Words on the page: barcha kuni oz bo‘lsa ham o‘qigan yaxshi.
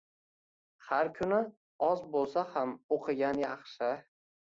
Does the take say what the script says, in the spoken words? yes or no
no